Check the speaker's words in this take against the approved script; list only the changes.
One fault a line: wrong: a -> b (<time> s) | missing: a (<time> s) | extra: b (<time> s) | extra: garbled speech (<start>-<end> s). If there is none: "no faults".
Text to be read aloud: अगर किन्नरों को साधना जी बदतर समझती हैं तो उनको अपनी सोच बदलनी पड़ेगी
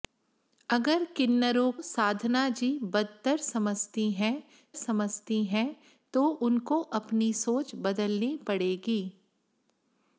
missing: को (1.7 s)
extra: समझती हैं (4.7 s)